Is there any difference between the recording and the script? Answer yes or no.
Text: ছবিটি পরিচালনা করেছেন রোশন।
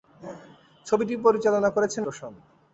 no